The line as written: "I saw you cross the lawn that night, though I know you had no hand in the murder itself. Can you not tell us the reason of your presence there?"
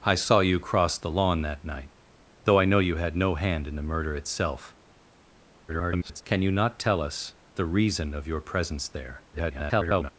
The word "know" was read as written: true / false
true